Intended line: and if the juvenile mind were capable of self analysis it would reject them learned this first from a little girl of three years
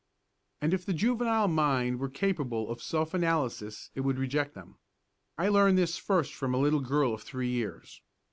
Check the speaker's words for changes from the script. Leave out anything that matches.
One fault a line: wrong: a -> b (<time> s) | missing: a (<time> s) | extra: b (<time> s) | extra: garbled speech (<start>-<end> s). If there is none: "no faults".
extra: i (5.4 s)